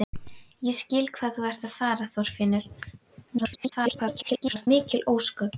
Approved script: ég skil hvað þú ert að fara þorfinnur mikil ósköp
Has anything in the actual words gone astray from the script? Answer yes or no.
yes